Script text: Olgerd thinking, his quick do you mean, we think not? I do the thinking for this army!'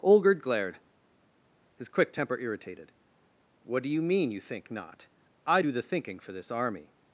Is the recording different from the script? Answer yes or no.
yes